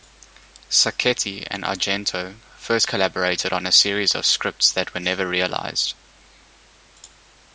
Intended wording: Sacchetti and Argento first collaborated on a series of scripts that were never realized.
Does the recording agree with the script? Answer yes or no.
yes